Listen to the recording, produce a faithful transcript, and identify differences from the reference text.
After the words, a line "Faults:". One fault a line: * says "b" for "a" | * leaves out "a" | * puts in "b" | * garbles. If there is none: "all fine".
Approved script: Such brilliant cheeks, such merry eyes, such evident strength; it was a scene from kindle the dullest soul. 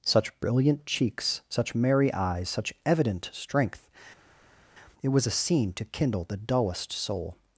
Such brilliant cheeks, such merry eyes, such evident strength; it was a scene to kindle the dullest soul.
Faults:
* says "to" for "from"